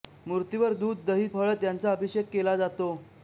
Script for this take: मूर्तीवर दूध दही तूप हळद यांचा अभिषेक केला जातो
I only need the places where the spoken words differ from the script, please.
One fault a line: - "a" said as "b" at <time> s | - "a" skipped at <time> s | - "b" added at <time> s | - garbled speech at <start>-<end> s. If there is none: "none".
- "तूप" skipped at 1.3 s